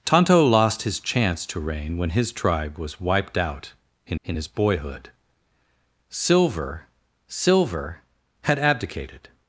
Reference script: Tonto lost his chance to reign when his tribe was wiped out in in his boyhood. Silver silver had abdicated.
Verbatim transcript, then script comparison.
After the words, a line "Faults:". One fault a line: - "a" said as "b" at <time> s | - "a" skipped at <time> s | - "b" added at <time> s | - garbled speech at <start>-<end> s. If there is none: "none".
Tonto lost his chance to reign when his tribe was wiped out in in his boyhood. Silver silver had abdicated.
Faults:
none